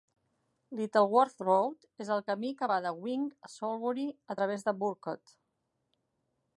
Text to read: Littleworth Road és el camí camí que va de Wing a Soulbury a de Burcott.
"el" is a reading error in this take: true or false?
false